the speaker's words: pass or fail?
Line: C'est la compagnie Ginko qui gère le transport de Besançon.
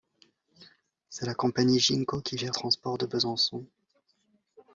fail